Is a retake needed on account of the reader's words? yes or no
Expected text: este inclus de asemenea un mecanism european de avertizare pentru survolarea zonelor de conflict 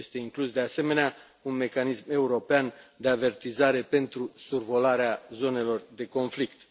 no